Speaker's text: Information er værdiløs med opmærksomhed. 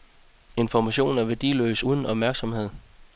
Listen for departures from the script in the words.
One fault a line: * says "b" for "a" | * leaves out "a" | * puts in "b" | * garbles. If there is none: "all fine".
* says "uden" for "med"